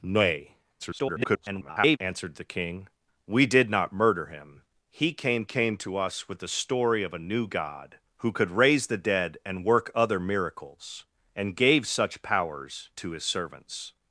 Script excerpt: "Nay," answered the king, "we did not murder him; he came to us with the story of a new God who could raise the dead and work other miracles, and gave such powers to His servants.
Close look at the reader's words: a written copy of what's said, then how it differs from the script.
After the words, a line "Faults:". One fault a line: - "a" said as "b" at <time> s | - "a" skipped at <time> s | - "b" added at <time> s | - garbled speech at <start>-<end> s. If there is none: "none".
"Nay," [garbled] answered the king, "we did not murder him; he came came to us with the story of a new God who could raise the dead and work other miracles, and gave such powers to His servants.
Faults:
- garbled speech at 0.8-2.0 s
- "came" added at 5.4 s